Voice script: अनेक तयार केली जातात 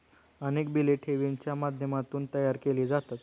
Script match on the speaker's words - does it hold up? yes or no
no